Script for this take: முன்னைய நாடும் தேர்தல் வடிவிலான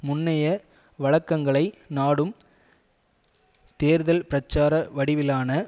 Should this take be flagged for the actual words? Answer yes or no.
yes